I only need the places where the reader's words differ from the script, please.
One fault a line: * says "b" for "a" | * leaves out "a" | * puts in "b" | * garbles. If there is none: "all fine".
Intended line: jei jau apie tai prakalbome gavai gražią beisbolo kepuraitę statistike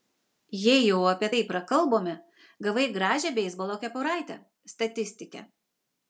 all fine